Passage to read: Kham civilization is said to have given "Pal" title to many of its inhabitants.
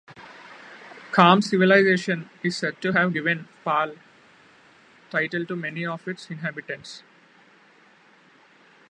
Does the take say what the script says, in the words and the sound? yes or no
yes